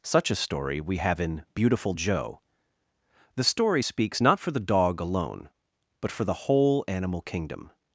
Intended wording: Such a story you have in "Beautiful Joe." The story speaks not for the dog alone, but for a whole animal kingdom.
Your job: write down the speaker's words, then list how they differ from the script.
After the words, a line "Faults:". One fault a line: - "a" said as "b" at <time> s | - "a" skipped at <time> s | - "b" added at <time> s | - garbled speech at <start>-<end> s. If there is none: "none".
Such a story we have in "Beautiful Joe." The story speaks not for the dog alone, but for the whole animal kingdom.
Faults:
- "you" said as "we" at 0.8 s
- "a" said as "the" at 6.3 s